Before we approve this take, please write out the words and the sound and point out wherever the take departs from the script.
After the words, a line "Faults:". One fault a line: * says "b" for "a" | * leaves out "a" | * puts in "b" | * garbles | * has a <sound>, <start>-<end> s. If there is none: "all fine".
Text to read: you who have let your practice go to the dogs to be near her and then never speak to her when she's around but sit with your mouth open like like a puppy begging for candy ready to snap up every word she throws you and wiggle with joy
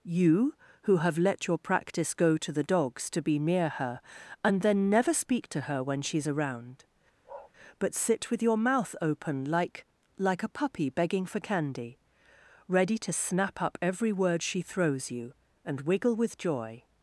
you who have let your practice go to the dogs to be near her and then never speak to her when she's around but sit with your mouth open like like a puppy begging for candy ready to snap up every word she throws you and wiggle with joy
Faults:
* has a bark, 7.2-7.5 s